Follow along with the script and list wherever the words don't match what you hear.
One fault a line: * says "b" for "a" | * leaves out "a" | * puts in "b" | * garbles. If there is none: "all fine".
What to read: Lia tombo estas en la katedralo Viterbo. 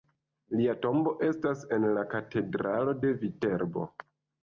* puts in "de"